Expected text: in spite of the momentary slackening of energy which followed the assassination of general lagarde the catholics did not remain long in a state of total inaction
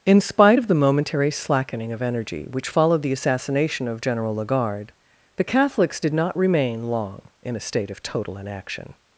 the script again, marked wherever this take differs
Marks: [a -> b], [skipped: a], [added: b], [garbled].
in spite of the momentary slackening of energy which followed the assassination of general lagarde the catholics did not remain long in a state of total inaction